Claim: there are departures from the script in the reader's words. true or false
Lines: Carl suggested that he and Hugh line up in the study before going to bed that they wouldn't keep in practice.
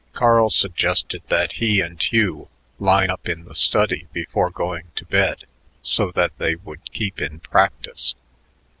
true